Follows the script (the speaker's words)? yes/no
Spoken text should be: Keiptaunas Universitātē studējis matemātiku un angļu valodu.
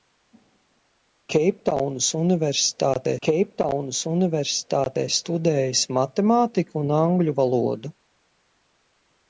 no